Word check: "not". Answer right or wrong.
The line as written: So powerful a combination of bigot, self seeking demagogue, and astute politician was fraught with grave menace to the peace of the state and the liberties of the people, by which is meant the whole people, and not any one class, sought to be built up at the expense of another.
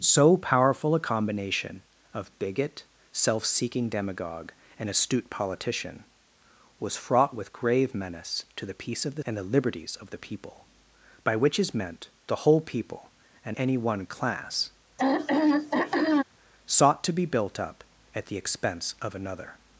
wrong